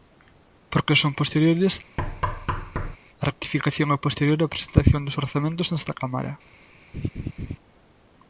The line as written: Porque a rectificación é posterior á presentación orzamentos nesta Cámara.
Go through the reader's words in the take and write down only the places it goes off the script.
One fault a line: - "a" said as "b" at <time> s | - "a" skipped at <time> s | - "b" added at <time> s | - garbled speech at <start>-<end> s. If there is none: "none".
- "son posteriores" added at 1.0 s
- "dos" added at 5.0 s